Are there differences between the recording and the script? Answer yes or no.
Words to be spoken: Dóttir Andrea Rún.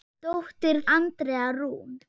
no